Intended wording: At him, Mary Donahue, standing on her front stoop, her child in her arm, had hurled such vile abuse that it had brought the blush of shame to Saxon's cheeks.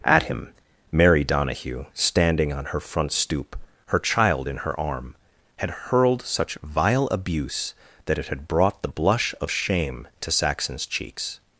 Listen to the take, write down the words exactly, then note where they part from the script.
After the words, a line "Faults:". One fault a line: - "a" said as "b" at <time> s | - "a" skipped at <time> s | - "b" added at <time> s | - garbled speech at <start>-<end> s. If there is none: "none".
At him, Mary Donahue, standing on her front stoop, her child in her arm, had hurled such vile abuse that it had brought the blush of shame to Saxon's cheeks.
Faults:
none